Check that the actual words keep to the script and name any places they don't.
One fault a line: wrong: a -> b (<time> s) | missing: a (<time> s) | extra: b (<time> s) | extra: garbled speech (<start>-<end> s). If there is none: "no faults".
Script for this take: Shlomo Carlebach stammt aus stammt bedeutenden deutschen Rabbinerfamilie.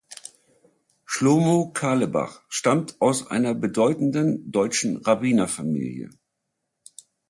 wrong: stammt -> einer (3.3 s)